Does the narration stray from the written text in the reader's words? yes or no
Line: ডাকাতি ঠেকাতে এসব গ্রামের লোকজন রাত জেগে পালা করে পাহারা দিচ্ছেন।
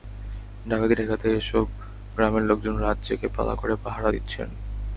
no